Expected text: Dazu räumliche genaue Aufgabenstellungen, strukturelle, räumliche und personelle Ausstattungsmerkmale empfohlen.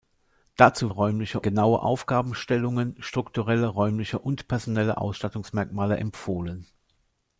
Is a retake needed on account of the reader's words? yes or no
no